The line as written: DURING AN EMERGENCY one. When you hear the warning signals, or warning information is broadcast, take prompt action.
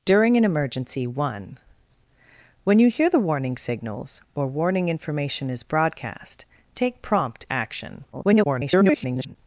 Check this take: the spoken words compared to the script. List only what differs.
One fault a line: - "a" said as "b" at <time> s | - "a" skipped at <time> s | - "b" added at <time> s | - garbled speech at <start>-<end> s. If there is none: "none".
- garbled speech at 8.1-9.4 s